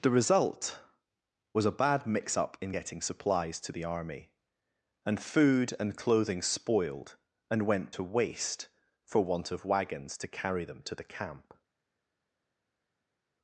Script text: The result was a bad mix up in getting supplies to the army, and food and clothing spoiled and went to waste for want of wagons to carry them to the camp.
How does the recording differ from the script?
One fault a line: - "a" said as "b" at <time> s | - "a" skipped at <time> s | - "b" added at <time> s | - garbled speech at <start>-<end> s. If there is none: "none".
none